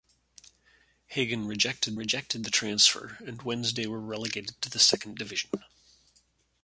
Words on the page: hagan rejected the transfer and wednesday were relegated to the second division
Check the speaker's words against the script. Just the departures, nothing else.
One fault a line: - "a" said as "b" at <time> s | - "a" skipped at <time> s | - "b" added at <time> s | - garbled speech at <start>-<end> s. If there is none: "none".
- "rejected" added at 1.9 s